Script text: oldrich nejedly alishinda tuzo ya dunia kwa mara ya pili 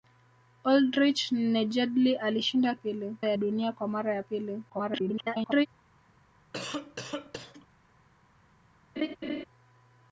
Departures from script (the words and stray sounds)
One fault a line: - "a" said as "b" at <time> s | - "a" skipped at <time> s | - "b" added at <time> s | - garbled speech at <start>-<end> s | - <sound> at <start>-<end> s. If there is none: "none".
- "tuzo" said as "pili" at 2.8 s
- garbled speech at 4.7-5.7 s
- cough at 6.5-7.7 s
- laugh at 9.0-9.4 s